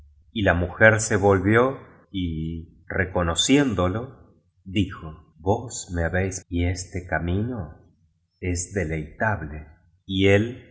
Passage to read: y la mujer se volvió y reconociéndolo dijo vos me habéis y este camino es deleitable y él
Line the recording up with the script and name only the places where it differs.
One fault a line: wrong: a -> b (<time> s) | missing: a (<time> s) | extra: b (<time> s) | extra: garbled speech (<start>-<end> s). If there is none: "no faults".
no faults